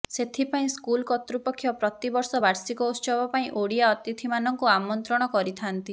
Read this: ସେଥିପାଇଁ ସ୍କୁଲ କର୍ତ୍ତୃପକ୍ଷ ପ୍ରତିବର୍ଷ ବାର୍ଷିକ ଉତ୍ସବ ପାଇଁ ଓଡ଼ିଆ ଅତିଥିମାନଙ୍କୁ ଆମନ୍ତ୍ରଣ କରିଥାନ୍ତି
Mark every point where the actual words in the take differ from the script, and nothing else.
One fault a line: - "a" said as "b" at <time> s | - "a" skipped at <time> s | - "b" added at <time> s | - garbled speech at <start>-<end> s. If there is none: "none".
none